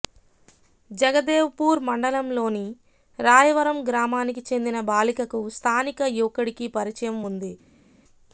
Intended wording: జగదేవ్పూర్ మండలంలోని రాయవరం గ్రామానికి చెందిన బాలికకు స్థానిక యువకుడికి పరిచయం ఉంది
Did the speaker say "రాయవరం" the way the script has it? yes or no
yes